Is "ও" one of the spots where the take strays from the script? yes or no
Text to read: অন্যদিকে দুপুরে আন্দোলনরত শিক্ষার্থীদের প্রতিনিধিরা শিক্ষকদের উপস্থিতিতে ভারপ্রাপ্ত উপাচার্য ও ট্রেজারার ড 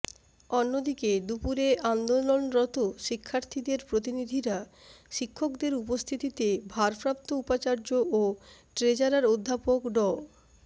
no